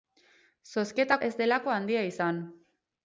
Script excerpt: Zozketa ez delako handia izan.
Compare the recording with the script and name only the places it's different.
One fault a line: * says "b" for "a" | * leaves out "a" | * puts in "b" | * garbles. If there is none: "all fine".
all fine